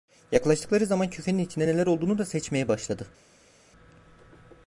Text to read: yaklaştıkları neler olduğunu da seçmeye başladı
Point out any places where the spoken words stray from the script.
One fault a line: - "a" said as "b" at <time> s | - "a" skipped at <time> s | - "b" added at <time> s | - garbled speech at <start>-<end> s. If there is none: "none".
- "zaman küfenin içinde" added at 0.8 s